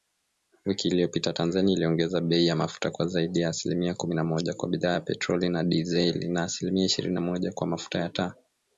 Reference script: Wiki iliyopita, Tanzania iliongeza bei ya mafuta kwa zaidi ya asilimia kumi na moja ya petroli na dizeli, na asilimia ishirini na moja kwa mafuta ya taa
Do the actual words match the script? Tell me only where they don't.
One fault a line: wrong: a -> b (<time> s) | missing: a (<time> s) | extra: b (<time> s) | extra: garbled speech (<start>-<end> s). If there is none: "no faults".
extra: kwa bidhaa (4.5 s)